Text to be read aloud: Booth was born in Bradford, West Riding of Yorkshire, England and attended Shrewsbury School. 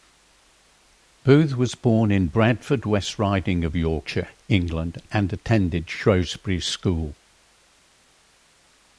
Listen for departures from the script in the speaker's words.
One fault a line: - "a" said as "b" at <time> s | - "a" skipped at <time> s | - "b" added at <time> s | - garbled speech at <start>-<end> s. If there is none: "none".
none